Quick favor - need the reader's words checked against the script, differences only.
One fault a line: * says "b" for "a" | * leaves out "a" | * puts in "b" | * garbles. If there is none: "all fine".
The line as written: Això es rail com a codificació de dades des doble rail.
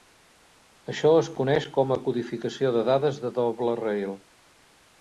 * says "coneix" for "rail"
* says "de" for "des"